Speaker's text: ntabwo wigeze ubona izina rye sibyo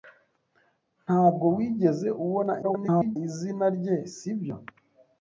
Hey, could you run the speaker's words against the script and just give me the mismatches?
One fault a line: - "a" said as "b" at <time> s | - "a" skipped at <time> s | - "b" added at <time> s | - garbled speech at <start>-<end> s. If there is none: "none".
- garbled speech at 2.6-3.2 s